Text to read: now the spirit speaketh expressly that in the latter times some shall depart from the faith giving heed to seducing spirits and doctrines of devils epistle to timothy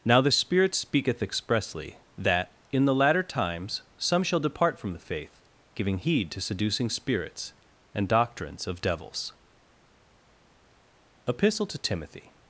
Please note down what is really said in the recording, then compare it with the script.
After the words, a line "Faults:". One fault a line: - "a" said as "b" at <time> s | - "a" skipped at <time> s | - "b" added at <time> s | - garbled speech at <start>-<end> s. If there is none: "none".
now the spirit speaketh expressly that in the latter times some shall depart from the faith giving heed to seducing spirits and doctrines of devils epistle to timothy
Faults:
none